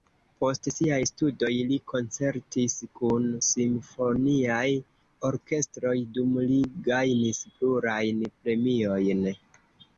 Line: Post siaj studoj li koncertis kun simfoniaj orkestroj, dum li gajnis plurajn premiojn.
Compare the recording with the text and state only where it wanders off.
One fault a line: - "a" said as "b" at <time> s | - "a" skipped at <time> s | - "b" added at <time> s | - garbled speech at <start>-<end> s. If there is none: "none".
none